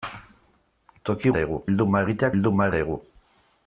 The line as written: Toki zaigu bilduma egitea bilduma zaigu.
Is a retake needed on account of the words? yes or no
no